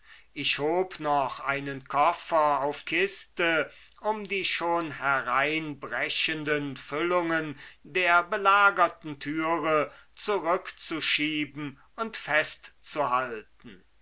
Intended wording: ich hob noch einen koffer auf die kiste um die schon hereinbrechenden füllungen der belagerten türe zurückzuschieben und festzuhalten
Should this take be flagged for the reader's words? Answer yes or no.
yes